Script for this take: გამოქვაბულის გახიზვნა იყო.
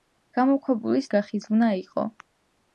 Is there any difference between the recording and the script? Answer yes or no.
no